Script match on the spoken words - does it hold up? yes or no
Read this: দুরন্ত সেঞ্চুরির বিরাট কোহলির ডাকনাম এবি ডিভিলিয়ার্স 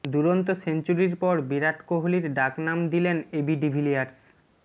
no